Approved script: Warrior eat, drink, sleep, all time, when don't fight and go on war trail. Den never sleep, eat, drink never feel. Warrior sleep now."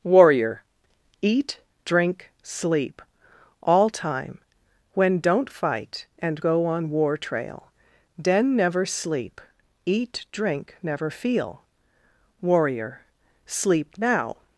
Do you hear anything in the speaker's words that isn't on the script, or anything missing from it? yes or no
no